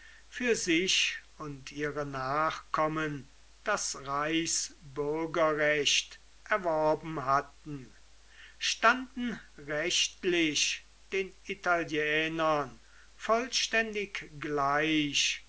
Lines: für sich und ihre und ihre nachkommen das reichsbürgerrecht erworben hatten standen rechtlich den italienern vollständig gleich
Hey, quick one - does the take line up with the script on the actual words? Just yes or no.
no